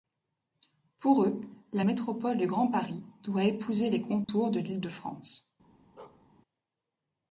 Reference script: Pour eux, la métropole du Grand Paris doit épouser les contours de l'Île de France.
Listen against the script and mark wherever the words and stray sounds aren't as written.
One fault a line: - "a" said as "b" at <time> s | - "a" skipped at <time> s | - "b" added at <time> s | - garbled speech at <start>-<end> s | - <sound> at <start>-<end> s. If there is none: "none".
- dropout at 4.2-4.3 s
- bark at 6.0-6.3 s